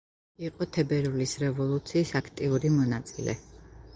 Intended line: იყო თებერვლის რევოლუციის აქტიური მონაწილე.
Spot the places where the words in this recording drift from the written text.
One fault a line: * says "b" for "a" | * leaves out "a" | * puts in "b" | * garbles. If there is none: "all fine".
all fine